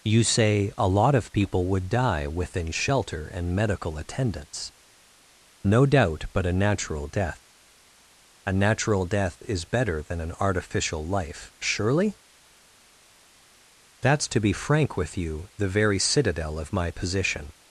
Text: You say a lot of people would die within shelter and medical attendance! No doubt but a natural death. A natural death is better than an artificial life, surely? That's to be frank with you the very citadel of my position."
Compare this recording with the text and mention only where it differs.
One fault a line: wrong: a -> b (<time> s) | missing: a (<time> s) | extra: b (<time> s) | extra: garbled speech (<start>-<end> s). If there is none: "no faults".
no faults